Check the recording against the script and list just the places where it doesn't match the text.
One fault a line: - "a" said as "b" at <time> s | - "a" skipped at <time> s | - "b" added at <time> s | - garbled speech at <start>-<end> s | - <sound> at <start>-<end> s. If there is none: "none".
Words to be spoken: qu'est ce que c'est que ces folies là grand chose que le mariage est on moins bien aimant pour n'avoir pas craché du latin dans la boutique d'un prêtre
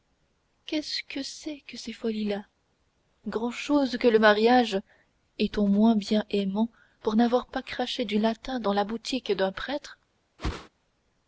- whoosh at 10.4-10.7 s